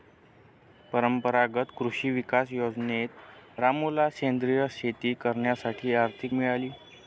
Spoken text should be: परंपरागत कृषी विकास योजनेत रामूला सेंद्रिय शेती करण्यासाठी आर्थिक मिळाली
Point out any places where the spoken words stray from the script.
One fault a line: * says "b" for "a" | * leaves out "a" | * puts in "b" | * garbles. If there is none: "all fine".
all fine